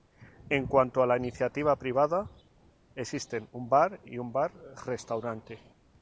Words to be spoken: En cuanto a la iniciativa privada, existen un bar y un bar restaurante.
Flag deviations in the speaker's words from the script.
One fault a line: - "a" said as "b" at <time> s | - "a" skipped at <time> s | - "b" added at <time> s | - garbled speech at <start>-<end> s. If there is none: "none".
none